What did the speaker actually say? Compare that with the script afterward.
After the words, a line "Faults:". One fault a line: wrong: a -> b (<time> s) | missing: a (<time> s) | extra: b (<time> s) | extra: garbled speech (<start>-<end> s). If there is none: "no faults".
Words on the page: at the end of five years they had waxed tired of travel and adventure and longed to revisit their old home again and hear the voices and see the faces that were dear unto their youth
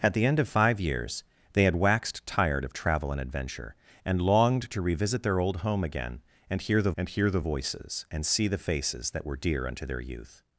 at the end of five years they had waxed tired of travel and adventure and longed to revisit their old home again and hear the and hear the voices and see the faces that were dear unto their youth
Faults:
extra: and hear the (7.0 s)